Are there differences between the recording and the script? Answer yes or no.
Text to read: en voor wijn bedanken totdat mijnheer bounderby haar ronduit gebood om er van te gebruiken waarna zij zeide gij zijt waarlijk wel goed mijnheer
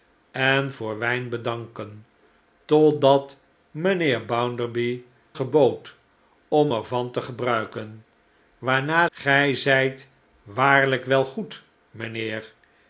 yes